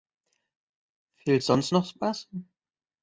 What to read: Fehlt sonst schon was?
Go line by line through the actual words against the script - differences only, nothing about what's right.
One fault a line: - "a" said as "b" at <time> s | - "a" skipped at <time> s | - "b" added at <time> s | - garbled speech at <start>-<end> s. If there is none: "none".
- "schon" said as "noch" at 1.7 s